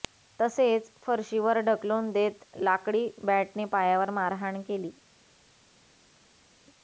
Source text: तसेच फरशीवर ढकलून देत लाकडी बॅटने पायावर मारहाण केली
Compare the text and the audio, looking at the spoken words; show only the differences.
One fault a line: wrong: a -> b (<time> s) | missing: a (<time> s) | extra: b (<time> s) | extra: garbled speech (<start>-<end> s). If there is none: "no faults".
no faults